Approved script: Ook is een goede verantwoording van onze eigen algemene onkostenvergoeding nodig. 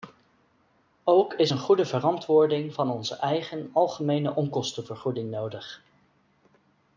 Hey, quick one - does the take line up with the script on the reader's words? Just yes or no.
yes